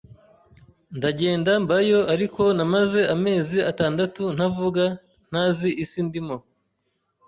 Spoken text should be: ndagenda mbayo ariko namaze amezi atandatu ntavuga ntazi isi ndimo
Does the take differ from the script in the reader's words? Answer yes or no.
no